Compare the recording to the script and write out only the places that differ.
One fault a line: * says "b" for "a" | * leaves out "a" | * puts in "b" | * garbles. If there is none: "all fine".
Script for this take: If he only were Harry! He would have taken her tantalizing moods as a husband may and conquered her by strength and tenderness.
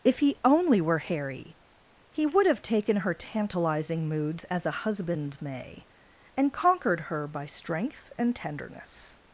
all fine